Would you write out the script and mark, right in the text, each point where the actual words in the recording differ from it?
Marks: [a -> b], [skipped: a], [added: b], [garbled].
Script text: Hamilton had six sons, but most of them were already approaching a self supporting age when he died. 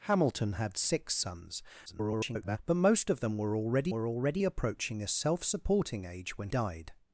Hamilton had six sons, [garbled] but most of them were already [added: were already] approaching a self supporting age when [skipped: he] died.